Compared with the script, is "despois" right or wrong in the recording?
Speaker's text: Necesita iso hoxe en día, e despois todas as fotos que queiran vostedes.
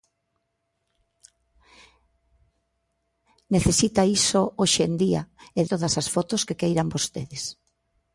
wrong